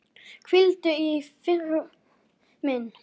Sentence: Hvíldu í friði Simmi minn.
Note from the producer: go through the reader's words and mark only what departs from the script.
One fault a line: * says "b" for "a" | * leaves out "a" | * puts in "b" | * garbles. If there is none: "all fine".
* leaves out "friði Simmi"